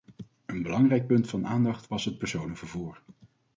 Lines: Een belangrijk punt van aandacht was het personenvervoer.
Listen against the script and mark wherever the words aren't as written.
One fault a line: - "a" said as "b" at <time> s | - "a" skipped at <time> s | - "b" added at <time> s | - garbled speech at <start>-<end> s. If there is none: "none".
none